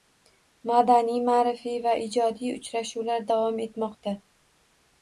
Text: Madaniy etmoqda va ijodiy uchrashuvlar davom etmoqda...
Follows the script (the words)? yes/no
no